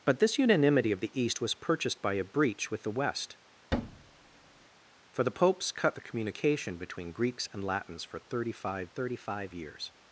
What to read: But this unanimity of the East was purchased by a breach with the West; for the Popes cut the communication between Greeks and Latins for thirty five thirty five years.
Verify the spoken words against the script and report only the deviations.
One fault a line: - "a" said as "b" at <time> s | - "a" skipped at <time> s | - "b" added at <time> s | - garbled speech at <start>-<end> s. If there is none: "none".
none